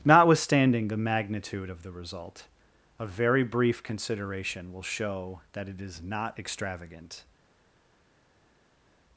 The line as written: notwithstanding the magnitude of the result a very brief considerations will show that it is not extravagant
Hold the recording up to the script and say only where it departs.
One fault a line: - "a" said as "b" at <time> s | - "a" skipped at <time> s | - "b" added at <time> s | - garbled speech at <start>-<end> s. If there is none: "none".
- "considerations" said as "consideration" at 3.8 s